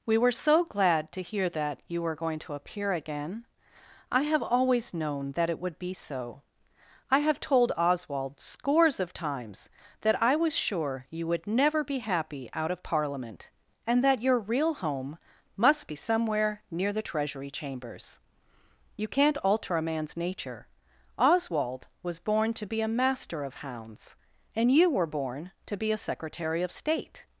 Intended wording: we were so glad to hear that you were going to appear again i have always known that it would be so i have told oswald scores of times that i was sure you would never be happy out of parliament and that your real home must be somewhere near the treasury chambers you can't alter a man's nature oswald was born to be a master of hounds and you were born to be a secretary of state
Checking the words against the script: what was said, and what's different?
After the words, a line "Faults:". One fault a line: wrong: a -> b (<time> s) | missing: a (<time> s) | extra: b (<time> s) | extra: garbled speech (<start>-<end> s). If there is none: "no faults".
we were so glad to hear that you were going to appear again i have always known that it would be so i have told oswald scores of times that i was sure you would never be happy out of parliament and that your real home must be somewhere near the treasury chambers you can't alter a man's nature oswald was born to be a master of hounds and you were born to be a secretary of state
Faults:
no faults